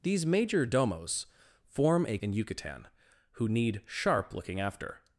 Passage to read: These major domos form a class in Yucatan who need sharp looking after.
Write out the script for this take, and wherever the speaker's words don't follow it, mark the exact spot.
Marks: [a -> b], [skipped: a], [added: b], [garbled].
These major domos form a [skipped: class] in Yucatan who need sharp looking after.